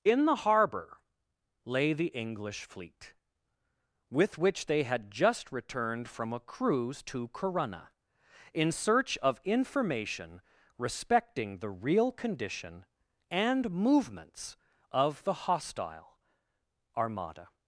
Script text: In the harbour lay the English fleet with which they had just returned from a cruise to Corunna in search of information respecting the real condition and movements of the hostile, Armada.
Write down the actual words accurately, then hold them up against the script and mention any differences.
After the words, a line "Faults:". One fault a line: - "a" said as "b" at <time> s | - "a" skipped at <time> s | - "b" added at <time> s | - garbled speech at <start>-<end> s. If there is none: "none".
In the harbour lay the English fleet with which they had just returned from a cruise to Corunna in search of information respecting the real condition and movements of the hostile, Armada.
Faults:
none